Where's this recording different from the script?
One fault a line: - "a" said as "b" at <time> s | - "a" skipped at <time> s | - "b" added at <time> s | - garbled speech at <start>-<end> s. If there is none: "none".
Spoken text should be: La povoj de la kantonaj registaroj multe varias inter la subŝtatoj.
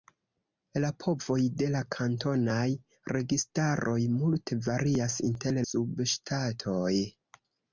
- "la" skipped at 5.6 s